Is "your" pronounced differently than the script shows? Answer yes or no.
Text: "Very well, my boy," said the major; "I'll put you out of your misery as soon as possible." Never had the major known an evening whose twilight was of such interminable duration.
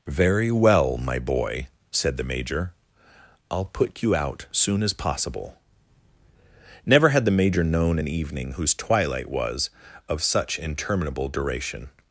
yes